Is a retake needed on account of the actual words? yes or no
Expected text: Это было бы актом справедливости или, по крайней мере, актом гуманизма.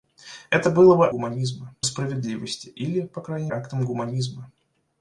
yes